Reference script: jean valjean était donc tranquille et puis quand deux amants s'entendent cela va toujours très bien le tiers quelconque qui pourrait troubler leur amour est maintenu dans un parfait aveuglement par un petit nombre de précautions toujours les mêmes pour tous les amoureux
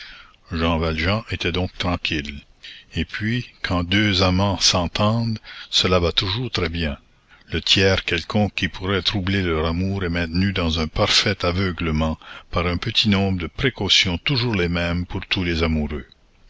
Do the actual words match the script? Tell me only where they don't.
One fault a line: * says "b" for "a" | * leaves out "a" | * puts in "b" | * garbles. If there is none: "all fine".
all fine